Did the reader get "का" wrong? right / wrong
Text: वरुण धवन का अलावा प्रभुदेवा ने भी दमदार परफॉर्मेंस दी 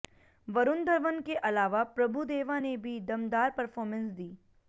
wrong